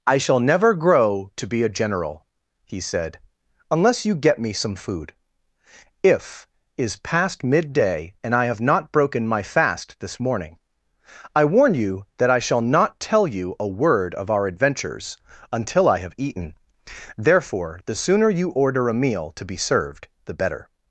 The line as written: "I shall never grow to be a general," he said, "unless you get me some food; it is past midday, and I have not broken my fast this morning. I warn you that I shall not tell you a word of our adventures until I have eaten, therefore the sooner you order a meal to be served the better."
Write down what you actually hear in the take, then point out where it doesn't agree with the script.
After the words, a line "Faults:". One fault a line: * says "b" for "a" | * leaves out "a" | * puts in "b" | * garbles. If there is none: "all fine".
"I shall never grow to be a general," he said, "unless you get me some food; if is past midday, and I have not broken my fast this morning. I warn you that I shall not tell you a word of our adventures until I have eaten, therefore the sooner you order a meal to be served the better."
Faults:
* says "if" for "it"